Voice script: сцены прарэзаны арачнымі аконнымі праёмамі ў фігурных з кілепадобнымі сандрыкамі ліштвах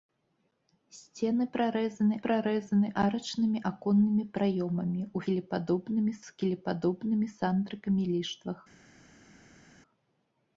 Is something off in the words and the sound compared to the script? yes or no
yes